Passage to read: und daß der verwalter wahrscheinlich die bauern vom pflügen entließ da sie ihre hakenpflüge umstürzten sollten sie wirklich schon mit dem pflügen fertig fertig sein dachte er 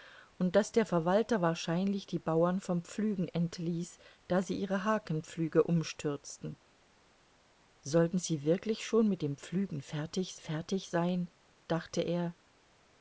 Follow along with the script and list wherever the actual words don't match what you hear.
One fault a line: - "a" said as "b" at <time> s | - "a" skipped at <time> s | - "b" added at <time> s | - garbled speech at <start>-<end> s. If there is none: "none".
none